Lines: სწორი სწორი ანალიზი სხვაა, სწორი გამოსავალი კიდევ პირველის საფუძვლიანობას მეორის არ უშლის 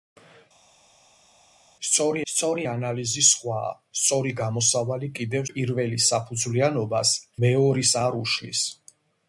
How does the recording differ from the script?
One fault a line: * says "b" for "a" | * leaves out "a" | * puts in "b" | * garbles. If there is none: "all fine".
all fine